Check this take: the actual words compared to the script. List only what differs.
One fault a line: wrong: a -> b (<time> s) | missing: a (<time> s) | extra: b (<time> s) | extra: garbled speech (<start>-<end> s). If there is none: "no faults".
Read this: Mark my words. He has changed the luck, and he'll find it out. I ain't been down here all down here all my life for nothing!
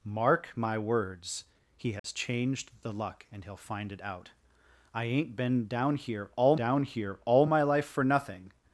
no faults